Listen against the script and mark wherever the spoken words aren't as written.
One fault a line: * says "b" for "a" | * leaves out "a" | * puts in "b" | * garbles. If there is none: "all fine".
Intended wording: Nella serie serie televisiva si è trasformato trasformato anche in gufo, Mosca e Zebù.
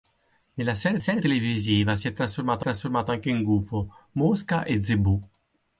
all fine